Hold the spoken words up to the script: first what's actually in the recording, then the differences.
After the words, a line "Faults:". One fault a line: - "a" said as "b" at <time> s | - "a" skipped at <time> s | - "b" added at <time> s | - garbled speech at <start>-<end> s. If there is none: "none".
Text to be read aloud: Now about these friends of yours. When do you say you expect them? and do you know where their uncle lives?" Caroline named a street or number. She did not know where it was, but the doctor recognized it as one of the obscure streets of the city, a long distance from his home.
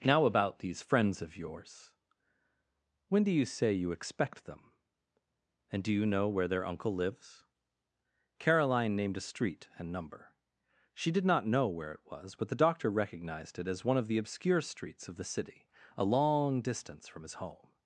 Now about these friends of yours. When do you say you expect them? and do you know where their uncle lives?" Caroline named a street and number. She did not know where it was, but the doctor recognized it as one of the obscure streets of the city, a long distance from his home.
Faults:
- "or" said as "and" at 9.8 s